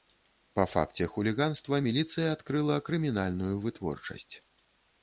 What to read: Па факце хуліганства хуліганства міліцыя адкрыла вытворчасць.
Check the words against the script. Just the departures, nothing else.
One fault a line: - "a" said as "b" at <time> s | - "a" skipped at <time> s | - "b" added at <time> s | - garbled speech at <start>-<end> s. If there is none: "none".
- "хуліганства" skipped at 1.8 s
- "крымінальную" added at 2.9 s